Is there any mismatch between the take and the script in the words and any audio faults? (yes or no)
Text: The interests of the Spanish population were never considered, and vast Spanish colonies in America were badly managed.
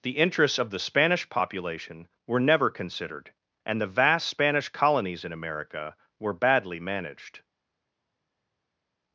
yes